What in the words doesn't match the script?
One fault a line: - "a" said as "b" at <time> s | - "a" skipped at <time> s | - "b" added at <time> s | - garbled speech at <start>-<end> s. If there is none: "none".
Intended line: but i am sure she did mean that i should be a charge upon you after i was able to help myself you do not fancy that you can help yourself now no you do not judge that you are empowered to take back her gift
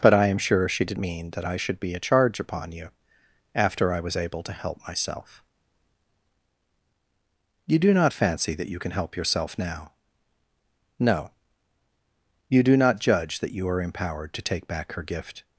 none